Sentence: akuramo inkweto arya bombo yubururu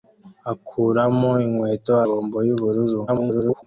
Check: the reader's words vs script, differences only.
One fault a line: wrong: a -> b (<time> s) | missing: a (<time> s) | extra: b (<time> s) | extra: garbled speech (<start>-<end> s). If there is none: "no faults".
missing: arya (1.9 s)
extra: garbled speech (3.1-3.6 s)